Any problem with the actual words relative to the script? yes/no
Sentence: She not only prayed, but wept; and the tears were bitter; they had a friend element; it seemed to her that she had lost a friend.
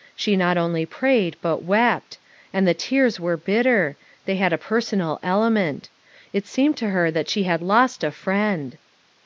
yes